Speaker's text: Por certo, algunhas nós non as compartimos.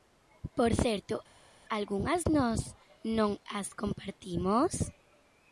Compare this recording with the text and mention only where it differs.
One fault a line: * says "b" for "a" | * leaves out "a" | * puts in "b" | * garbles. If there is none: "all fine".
all fine